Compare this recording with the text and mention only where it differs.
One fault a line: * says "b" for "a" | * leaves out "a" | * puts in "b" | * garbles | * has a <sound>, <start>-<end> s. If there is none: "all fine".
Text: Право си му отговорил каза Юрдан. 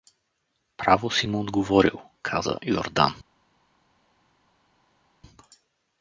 all fine